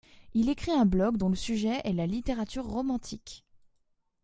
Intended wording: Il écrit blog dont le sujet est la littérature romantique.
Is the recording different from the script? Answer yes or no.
yes